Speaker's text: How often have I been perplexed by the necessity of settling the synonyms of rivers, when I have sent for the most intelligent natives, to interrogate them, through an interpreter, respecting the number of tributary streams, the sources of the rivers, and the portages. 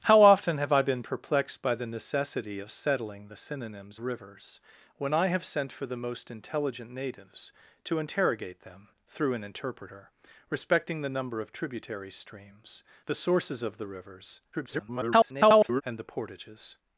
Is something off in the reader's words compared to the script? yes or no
yes